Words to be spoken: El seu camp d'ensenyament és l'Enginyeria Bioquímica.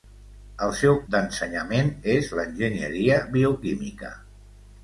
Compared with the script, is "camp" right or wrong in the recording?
wrong